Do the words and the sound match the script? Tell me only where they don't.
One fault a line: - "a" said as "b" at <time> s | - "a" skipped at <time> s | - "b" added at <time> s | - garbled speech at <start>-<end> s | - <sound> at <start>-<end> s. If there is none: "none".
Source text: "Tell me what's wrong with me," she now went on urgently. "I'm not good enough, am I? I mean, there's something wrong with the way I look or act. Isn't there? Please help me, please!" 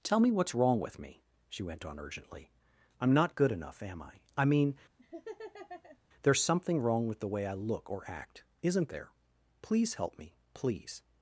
- "now" skipped at 1.6 s
- laugh at 5.0-6.0 s